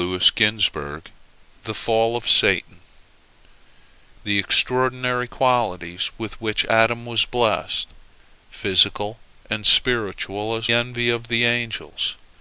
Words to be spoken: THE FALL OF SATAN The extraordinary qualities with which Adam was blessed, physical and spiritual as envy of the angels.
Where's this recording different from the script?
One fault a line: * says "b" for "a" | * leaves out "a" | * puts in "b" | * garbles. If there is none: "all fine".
all fine